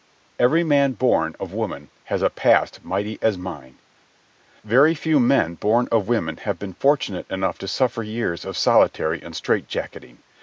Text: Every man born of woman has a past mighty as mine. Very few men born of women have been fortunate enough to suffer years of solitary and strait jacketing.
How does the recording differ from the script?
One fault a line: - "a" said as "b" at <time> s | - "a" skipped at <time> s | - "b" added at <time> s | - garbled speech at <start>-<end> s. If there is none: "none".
none